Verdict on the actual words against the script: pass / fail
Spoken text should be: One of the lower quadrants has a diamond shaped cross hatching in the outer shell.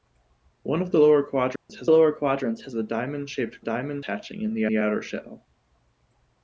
fail